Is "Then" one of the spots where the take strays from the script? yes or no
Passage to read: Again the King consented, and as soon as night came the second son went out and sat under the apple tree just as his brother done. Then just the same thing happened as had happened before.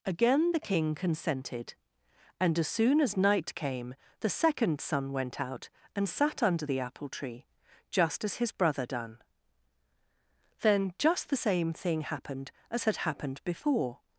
no